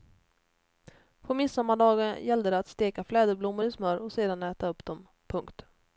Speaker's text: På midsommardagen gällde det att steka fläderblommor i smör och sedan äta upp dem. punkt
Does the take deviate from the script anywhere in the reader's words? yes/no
no